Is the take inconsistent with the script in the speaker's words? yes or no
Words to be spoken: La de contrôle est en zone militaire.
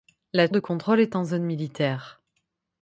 no